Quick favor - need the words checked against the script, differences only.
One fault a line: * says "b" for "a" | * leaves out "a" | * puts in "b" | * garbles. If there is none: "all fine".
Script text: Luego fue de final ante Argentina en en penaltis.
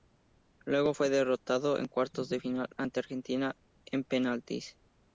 * puts in "derrotado en cuartos"
* leaves out "en"